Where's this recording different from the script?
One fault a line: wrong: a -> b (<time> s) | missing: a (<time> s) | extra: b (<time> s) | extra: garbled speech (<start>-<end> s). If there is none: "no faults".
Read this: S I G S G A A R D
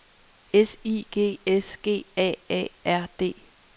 no faults